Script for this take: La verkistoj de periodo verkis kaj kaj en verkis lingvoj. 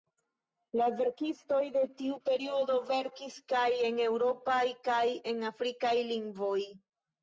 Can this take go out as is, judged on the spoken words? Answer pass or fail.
fail